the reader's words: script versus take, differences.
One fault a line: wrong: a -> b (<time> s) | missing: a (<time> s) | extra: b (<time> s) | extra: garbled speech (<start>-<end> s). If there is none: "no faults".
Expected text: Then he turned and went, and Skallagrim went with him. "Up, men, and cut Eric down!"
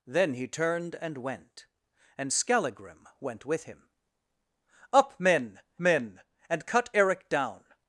extra: men (5.8 s)